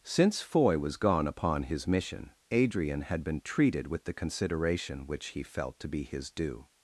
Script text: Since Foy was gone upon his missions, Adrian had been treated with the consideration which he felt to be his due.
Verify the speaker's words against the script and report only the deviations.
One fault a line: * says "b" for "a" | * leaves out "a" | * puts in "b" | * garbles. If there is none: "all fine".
* says "mission" for "missions"